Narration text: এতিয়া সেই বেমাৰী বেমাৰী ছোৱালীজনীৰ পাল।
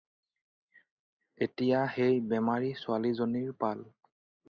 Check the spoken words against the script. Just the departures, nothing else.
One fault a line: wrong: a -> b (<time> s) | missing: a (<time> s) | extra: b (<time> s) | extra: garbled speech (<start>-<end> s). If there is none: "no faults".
missing: বেমাৰী (2.8 s)